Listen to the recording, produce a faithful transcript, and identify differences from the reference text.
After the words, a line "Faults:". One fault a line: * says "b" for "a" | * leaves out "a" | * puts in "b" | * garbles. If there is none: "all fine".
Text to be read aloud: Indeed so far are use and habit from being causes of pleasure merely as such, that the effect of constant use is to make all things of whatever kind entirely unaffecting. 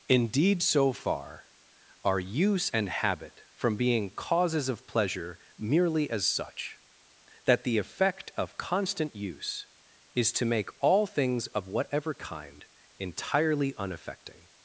Indeed so far are use and habit from being causes of pleasure merely as such, that the effect of constant use is to make all things of whatever kind entirely unaffecting.
Faults:
all fine